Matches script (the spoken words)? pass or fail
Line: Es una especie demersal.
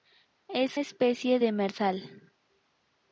fail